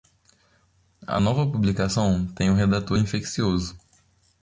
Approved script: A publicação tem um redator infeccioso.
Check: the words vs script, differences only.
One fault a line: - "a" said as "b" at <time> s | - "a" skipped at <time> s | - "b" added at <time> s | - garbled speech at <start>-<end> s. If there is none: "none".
- "nova" added at 1.2 s